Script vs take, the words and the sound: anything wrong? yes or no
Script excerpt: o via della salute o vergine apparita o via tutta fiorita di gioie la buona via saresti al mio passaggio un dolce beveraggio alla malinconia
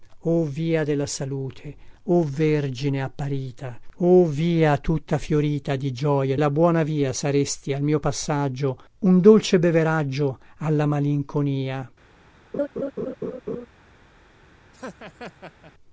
yes